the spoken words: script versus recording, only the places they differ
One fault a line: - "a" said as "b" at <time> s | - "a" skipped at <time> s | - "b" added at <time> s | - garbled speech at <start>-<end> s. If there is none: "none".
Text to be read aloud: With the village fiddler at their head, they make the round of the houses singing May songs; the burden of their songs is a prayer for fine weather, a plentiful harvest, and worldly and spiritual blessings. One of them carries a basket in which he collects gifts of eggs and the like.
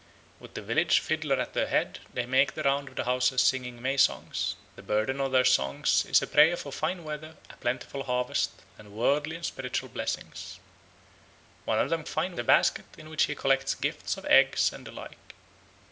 - "carries" said as "fine" at 12.1 s